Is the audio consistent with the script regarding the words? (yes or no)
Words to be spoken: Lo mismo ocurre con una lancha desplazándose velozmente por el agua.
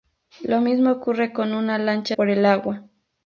no